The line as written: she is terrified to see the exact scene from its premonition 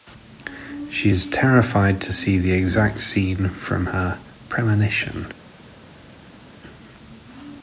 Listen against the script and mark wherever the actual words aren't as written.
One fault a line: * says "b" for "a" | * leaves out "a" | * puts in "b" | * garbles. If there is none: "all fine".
* says "her" for "its"